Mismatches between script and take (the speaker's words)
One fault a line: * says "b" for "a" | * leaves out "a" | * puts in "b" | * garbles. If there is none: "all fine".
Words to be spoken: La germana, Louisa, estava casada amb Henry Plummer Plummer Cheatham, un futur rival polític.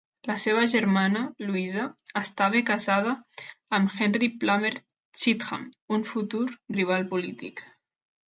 * puts in "seva"
* leaves out "Plummer"